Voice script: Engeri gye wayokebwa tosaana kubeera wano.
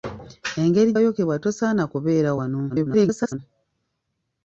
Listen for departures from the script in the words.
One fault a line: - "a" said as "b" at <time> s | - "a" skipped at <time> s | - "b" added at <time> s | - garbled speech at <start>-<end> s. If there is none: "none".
- "gye" skipped at 0.9 s
- garbled speech at 2.7-3.4 s